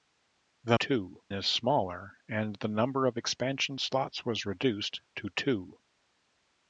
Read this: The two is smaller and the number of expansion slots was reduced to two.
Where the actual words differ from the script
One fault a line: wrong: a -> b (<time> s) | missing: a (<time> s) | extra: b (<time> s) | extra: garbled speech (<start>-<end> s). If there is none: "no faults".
no faults